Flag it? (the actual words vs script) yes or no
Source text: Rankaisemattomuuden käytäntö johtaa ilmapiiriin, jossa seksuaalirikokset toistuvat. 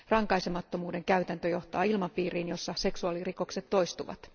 no